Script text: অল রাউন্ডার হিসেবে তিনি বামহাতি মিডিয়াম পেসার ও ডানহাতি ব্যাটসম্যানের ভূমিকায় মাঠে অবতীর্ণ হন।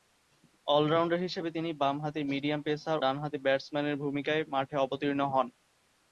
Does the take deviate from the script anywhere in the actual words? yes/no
yes